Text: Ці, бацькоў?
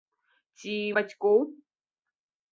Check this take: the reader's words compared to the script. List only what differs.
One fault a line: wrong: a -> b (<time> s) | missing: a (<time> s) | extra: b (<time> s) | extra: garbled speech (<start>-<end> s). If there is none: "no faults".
no faults